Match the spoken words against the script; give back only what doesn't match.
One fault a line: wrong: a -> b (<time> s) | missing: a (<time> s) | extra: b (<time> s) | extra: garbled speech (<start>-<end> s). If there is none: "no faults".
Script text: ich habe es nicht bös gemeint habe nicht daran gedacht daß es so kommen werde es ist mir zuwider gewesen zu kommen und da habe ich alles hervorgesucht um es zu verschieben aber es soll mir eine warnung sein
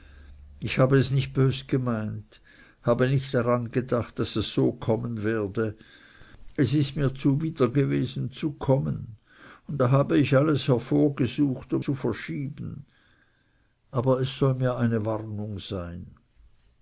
missing: es (11.8 s)